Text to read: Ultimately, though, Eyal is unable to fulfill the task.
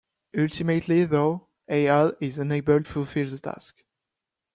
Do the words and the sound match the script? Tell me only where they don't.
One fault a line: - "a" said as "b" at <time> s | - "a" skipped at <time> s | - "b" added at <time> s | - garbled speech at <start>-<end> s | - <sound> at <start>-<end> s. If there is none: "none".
- "to" skipped at 2.8 s